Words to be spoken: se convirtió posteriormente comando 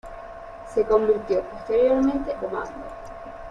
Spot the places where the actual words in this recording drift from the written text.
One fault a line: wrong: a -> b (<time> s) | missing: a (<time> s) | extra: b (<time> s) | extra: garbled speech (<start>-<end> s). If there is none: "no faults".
no faults